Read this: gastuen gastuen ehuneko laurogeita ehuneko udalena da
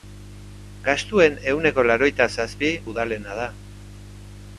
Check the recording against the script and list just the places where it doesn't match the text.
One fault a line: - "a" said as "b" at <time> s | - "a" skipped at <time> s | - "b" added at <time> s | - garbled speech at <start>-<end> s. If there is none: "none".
- "gastuen" skipped at 1.4 s
- "ehuneko" said as "zazpi" at 2.4 s